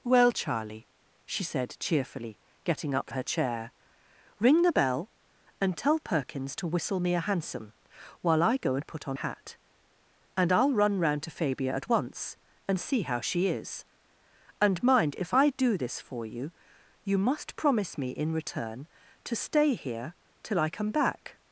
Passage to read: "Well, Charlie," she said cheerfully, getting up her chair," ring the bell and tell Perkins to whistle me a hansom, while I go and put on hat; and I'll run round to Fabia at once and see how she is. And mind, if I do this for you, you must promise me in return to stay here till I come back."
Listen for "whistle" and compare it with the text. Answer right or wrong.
right